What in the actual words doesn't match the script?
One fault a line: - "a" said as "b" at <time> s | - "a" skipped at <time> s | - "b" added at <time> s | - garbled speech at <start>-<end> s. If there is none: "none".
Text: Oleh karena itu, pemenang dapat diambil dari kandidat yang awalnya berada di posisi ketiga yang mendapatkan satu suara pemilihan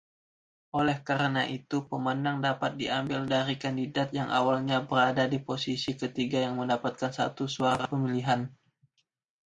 none